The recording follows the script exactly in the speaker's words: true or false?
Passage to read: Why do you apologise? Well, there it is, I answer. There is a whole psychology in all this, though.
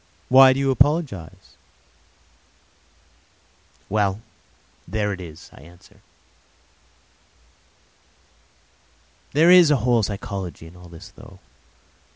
true